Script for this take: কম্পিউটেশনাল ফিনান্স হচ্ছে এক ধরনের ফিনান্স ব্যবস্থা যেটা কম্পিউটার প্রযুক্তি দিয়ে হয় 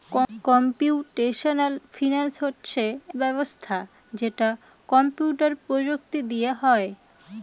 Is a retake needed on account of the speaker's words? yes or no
yes